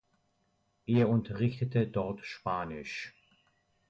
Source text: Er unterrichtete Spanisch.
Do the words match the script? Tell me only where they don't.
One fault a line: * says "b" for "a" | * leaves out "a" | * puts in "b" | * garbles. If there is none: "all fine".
* puts in "dort"